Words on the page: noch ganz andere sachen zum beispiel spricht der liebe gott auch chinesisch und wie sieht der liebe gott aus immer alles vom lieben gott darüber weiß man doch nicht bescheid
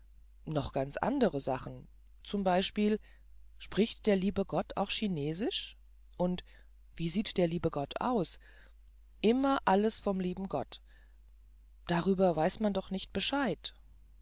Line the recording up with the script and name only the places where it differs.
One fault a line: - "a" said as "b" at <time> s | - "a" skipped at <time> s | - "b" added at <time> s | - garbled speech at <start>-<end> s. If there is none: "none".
none